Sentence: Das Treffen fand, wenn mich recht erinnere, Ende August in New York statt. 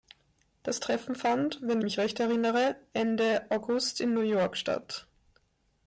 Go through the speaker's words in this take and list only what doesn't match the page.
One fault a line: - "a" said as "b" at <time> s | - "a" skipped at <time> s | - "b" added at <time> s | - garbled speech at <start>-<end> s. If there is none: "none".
none